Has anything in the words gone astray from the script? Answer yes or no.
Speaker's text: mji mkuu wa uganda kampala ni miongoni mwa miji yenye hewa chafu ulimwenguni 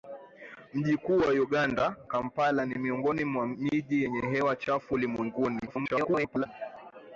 yes